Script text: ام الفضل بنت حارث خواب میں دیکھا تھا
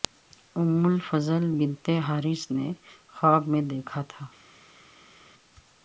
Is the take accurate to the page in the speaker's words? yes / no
no